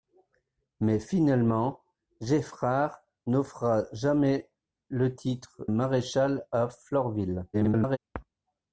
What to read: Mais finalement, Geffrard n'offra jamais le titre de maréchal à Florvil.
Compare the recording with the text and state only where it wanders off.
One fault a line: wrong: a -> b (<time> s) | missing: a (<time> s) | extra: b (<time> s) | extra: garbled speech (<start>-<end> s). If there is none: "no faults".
missing: de (5.7 s)
extra: garbled speech (7.5-8.0 s)